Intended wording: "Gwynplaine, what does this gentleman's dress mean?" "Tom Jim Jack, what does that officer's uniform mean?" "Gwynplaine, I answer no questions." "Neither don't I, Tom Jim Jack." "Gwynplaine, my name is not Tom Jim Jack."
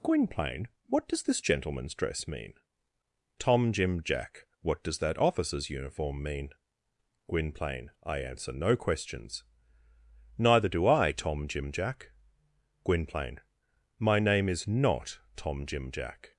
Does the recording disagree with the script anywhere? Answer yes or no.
yes